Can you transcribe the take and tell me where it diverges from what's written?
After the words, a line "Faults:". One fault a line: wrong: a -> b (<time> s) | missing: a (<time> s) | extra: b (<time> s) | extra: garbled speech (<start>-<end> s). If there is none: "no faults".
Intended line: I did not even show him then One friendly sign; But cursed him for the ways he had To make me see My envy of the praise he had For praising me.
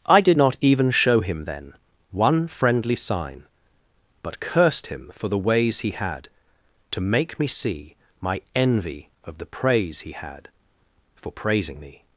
I did not even show him then One friendly sign; But cursed him for the ways he had To make me see My envy of the praise he had For praising me.
Faults:
no faults